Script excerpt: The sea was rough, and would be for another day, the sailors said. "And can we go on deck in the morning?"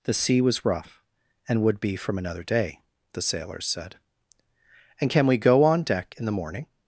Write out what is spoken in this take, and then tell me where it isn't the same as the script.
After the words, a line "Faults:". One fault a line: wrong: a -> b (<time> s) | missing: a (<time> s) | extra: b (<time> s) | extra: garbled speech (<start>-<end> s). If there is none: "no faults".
The sea was rough, and would be from another day, the sailors said. "And can we go on deck in the morning?"
Faults:
wrong: for -> from (1.9 s)